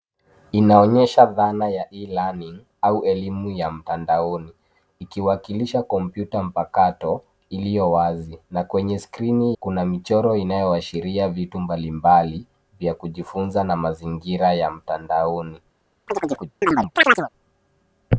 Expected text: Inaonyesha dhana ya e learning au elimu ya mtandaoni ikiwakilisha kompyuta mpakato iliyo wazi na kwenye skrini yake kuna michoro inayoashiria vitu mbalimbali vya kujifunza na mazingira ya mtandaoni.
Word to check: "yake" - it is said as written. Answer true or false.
false